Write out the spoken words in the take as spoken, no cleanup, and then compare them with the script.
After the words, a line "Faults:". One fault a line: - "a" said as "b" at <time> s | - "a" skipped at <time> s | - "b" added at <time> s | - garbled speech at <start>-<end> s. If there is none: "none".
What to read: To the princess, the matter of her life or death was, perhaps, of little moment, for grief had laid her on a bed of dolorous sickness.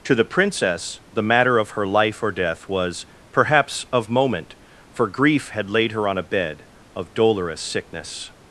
To the princess, the matter of her life or death was, perhaps, of moment, for grief had laid her on a bed of dolorous sickness.
Faults:
- "little" skipped at 4.1 s